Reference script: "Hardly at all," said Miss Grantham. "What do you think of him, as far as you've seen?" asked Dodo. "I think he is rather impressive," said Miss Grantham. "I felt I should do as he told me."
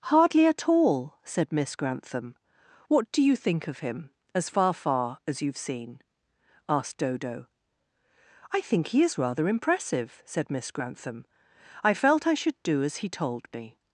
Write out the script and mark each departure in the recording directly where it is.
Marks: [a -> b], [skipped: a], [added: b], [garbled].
"Hardly at all," said Miss Grantham. "What do you think of him, as far [added: far] as you've seen?" asked Dodo. "I think he is rather impressive," said Miss Grantham. "I felt I should do as he told me."